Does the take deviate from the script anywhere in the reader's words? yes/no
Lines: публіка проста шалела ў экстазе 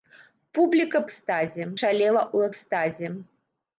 yes